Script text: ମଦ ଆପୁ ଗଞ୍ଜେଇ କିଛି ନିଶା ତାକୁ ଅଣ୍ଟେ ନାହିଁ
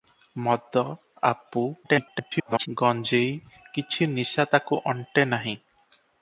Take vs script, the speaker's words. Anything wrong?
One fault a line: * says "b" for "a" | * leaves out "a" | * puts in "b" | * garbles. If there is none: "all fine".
* garbles